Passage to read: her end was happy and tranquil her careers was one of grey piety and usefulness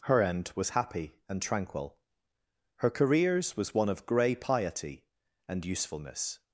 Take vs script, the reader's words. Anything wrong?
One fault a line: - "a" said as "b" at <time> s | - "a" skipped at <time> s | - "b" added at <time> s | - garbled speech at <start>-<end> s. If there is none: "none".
none